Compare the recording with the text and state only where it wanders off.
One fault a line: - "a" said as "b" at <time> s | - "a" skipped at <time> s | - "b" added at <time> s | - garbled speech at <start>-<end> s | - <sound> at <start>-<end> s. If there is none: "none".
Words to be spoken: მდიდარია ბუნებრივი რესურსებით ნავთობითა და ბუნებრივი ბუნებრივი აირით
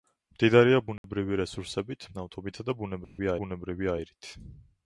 - dropout at 1.0-1.0 s
- dropout at 3.0-3.2 s